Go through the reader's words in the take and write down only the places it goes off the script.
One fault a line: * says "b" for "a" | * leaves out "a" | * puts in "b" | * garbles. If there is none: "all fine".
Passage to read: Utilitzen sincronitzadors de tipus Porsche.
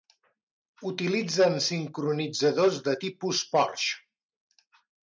all fine